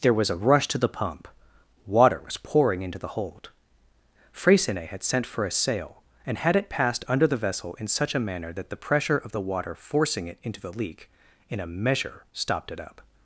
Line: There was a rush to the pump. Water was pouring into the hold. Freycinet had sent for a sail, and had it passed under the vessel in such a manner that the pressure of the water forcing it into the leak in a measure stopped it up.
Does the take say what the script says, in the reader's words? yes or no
yes